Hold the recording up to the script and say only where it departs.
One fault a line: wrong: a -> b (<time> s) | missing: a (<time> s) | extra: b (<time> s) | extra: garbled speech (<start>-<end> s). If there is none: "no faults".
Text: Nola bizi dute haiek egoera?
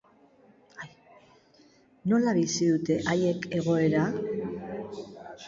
no faults